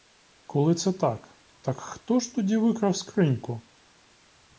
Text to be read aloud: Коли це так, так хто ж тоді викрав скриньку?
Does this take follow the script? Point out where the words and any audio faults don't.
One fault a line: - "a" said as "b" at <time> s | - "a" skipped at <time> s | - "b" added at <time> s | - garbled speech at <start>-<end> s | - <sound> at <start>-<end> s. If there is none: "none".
none